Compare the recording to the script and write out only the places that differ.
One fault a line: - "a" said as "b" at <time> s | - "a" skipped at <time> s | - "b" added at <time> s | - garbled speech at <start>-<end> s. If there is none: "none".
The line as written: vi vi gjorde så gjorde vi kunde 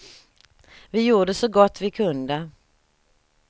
- "vi" skipped at 1.0 s
- "gjorde" said as "gott" at 1.5 s